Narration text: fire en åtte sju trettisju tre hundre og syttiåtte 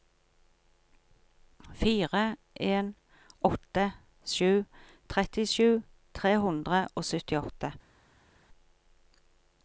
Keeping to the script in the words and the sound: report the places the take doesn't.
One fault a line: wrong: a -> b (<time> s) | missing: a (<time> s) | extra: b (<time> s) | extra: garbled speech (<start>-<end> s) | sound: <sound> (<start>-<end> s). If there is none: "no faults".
no faults